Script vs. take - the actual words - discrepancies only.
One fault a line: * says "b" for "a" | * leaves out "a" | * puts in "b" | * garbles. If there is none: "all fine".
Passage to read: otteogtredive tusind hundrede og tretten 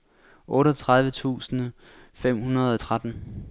* puts in "fem"